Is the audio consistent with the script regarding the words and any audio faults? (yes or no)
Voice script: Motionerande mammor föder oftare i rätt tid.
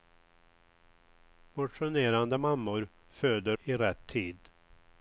no